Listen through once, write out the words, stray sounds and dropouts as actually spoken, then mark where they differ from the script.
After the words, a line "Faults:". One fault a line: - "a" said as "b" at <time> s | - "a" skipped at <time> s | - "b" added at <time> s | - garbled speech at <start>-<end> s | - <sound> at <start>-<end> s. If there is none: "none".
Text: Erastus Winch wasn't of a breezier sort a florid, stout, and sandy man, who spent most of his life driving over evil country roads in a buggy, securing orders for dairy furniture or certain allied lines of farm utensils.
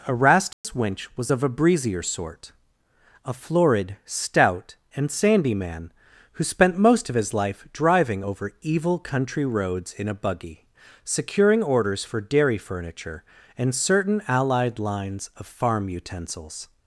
Erastus Winch was of a breezier sort a florid, stout, and sandy man, who spent most of his life driving over evil country roads in a buggy, securing orders for dairy furniture and certain allied lines of farm utensils.
Faults:
- dropout at 0.5-0.6 s
- "wasn't" said as "was" at 1.1 s
- "or" said as "and" at 13.6 s